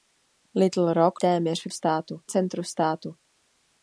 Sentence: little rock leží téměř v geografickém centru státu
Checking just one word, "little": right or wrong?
right